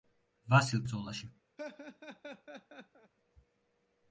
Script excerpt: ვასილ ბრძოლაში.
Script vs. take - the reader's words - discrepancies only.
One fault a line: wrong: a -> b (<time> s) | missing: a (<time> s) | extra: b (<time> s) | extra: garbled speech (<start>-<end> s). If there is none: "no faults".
no faults